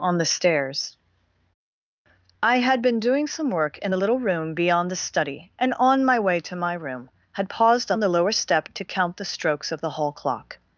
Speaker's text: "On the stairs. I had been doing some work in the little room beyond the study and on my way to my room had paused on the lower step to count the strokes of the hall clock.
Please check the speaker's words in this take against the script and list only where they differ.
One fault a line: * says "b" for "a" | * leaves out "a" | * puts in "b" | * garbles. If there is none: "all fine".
all fine